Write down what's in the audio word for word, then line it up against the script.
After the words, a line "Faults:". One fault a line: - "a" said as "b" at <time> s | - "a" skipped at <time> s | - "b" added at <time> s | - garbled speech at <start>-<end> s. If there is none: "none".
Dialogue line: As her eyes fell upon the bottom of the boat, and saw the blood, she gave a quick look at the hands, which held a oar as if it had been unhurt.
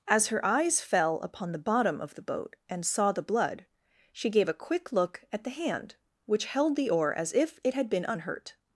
As her eyes fell upon the bottom of the boat, and saw the blood, she gave a quick look at the hand, which held the oar as if it had been unhurt.
Faults:
- "hands" said as "hand" at 5.5 s
- "a" said as "the" at 6.8 s